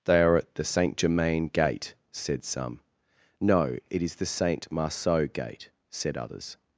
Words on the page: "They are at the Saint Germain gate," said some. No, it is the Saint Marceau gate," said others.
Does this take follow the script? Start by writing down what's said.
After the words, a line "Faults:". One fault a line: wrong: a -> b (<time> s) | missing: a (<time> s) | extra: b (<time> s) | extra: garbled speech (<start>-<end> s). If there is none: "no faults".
"They are at the Saint Germain gate," said some. No, it is the Saint Marceau gate," said others.
Faults:
no faults